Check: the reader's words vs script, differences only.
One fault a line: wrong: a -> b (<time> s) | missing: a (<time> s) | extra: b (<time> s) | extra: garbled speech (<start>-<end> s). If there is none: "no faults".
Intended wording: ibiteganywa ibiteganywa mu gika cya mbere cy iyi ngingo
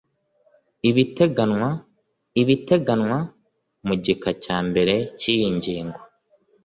no faults